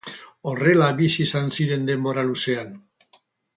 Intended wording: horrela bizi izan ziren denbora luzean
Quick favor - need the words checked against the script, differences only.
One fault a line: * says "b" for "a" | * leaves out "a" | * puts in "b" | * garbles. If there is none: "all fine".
all fine